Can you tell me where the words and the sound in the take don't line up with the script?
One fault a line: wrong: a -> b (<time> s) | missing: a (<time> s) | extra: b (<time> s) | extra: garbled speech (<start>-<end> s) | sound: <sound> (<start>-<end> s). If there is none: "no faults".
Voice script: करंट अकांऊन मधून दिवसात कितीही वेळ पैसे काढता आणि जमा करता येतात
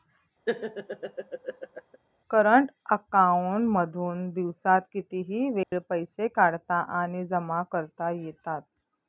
sound: laugh (0.5-2.0 s)
sound: dropout (5.6-5.7 s)